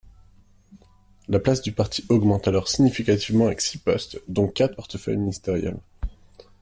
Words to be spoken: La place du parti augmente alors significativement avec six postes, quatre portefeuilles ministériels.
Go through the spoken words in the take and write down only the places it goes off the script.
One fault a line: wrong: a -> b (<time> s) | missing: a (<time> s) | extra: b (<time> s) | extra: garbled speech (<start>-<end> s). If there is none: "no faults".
extra: dont (4.3 s)